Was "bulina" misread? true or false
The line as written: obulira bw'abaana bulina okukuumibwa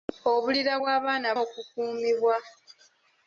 true